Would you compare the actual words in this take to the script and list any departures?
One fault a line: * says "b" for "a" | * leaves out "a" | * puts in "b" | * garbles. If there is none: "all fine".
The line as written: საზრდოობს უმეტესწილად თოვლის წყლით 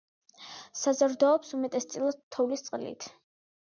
all fine